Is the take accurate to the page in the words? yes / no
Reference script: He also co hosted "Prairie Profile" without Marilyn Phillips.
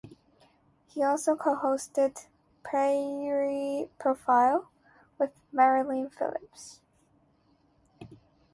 no